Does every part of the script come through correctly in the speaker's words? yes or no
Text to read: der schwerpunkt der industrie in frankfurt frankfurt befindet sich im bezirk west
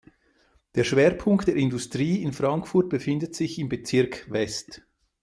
no